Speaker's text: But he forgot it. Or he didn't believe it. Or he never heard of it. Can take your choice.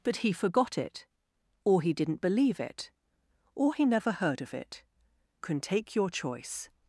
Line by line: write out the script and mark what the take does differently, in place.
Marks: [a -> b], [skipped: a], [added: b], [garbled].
But he forgot it. Or he didn't believe it. Or he never heard of it. Can take your choice.